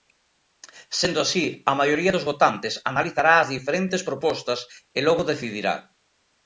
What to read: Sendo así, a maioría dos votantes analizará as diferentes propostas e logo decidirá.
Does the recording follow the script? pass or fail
pass